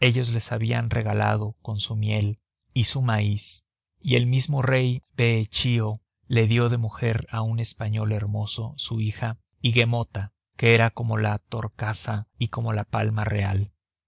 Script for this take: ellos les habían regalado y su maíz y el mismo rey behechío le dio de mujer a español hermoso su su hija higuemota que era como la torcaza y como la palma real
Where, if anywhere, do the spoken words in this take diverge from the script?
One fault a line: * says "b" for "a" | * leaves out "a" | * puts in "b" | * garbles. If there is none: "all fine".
* puts in "con su miel"
* puts in "un"
* leaves out "su"